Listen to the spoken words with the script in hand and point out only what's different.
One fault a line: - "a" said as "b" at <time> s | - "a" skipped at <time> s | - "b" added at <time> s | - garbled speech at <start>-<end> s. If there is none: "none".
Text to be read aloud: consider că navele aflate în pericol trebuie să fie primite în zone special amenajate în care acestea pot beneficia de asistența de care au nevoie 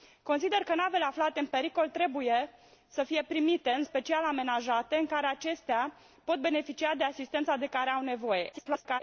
- "zone" skipped at 3.8 s
- garbled speech at 8.5-9.0 s